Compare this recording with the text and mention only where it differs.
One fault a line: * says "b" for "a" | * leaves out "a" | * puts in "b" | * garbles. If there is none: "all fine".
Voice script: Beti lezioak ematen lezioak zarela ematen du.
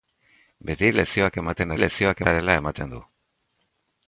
all fine